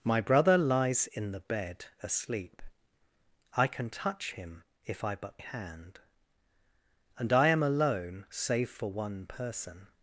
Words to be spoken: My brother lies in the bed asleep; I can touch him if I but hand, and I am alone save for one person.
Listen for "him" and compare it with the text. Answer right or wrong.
right